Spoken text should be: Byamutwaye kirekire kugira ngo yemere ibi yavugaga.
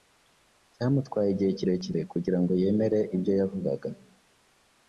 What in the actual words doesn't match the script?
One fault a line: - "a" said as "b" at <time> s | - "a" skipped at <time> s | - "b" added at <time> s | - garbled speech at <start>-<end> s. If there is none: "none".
- "igihe" added at 1.3 s
- "ibi" said as "ibyo" at 3.1 s